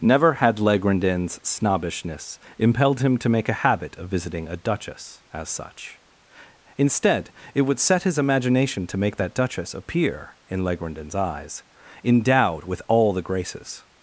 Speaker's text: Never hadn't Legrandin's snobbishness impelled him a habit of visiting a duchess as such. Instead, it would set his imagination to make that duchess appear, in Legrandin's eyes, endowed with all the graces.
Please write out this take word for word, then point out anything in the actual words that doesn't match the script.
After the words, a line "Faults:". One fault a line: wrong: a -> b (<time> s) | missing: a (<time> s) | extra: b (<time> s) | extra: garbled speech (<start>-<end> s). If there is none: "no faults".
Never had Legrandin's snobbishness impelled him to make a habit of visiting a duchess as such. Instead, it would set his imagination to make that duchess appear, in Legrandin's eyes, endowed with all the graces.
Faults:
wrong: hadn't -> had (0.3 s)
extra: to make (3.2 s)